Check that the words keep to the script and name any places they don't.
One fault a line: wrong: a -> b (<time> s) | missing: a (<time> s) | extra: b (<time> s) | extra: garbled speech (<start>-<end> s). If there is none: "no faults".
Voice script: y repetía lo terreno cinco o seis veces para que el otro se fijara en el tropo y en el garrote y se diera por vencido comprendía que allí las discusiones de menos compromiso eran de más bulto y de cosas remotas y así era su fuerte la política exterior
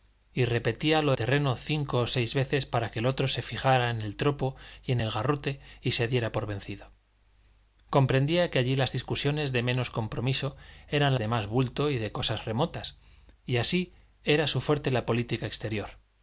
no faults